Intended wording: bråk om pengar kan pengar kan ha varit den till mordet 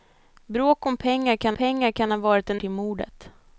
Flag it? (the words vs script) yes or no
no